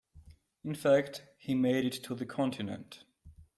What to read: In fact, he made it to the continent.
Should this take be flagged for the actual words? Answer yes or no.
no